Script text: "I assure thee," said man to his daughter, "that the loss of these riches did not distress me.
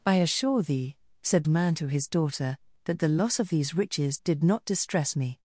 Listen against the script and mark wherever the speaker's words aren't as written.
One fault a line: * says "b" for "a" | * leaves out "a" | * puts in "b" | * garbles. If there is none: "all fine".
all fine